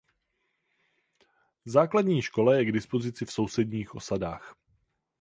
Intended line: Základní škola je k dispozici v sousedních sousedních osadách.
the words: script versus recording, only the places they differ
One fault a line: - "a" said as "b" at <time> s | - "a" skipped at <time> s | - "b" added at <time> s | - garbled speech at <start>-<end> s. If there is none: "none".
- "sousedních" skipped at 4.0 s